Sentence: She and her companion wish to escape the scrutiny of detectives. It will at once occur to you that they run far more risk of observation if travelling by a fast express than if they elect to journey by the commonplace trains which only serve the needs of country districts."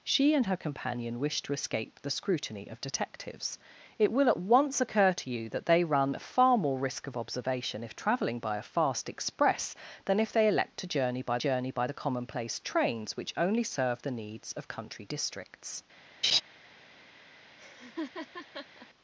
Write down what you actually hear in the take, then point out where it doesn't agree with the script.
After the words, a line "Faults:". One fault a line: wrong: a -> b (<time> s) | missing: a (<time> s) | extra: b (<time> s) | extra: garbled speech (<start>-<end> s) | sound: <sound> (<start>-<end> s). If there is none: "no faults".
She and her companion wish to escape the scrutiny of detectives. It will at once occur to you that they run far more risk of observation if travelling by a fast express than if they elect to journey by journey by the commonplace trains which only serve the needs of country districts."
Faults:
extra: journey by (11.4 s)
sound: laugh (16.2-16.4 s)
sound: laugh (17.6-18.9 s)